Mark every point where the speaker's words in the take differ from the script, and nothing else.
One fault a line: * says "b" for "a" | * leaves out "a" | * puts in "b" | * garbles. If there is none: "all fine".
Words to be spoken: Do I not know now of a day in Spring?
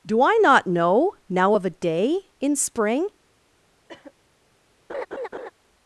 all fine